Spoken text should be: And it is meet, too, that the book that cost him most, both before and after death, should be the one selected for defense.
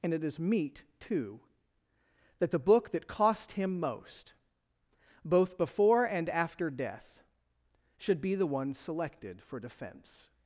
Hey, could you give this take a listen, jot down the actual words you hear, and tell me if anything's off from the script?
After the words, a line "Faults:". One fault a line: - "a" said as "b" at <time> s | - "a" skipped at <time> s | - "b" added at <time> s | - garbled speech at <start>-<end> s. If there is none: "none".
And it is meet, too, that the book that cost him most, both before and after death, should be the one selected for defense.
Faults:
none